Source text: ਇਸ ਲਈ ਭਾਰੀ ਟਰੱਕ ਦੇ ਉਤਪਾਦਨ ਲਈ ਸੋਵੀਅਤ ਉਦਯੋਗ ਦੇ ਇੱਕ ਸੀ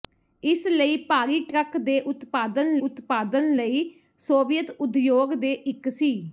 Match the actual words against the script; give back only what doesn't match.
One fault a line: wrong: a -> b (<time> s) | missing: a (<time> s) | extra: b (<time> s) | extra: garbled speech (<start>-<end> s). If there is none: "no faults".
extra: ਉਤਪਾਦਨ (2.8 s)